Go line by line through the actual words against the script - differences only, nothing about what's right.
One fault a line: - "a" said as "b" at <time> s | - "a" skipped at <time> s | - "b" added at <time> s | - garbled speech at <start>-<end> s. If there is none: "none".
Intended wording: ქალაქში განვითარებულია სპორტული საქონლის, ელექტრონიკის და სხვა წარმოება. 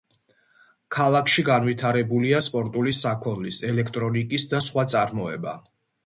none